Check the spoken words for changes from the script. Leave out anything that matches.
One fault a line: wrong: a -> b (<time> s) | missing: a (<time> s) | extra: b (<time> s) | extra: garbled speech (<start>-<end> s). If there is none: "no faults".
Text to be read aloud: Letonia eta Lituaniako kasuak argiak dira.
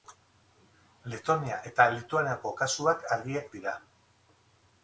no faults